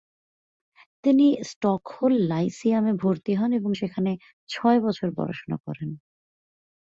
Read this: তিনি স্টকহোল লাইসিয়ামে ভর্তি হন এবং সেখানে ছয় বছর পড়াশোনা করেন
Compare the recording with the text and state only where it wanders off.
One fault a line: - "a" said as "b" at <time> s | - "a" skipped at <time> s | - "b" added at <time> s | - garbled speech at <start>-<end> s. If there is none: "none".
none